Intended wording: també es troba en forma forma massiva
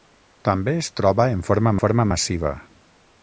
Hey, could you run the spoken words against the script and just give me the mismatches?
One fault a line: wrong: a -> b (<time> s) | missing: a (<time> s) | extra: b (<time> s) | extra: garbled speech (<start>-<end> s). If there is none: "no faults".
no faults